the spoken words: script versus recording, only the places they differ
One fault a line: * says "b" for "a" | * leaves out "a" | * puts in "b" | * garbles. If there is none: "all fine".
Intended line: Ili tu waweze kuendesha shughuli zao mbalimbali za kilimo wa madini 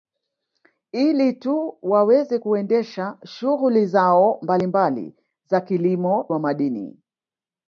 all fine